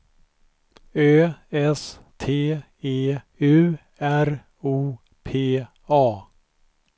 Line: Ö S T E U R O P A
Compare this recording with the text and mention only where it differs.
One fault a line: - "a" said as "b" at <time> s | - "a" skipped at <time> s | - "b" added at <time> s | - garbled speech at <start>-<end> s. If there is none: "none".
none